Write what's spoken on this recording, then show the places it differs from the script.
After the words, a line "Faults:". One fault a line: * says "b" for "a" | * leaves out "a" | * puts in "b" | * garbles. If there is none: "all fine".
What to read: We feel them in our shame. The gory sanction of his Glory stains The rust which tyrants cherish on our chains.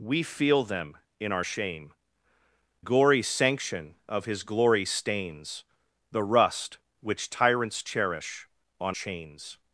We feel them in our shame. Gory sanction of his Glory stains The rust which tyrants cherish on chains.
Faults:
* leaves out "The"
* leaves out "our"